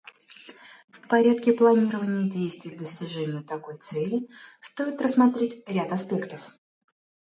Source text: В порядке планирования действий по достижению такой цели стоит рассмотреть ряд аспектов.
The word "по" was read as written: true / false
false